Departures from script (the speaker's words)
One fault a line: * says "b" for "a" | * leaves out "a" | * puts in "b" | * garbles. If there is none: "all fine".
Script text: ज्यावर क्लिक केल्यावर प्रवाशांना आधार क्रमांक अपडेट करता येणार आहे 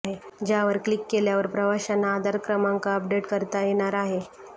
all fine